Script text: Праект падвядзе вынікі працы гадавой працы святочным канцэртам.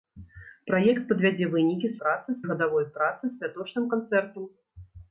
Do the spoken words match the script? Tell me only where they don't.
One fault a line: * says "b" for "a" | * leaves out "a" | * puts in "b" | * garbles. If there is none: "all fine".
all fine